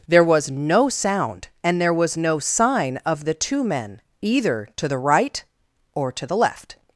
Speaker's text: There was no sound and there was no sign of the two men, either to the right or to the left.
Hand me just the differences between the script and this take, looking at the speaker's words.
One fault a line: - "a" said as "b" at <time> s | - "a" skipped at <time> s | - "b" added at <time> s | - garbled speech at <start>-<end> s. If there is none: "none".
none